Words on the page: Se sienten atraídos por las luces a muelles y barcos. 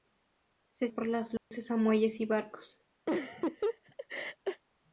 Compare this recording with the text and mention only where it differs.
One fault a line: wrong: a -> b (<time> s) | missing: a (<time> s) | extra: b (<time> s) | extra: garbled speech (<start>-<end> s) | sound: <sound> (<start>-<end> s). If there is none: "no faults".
missing: sienten atraídos (0.9 s)
sound: dropout (1.4-1.5 s)
sound: laugh (3.1-4.6 s)